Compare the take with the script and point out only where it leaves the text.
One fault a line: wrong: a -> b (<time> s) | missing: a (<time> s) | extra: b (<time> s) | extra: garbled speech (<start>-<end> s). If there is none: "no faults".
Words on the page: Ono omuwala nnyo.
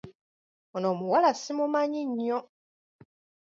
extra: simumanyi (1.3 s)